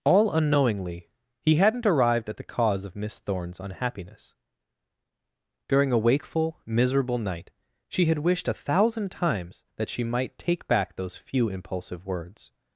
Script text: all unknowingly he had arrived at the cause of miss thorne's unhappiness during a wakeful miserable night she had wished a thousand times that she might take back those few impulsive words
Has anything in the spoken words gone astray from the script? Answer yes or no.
yes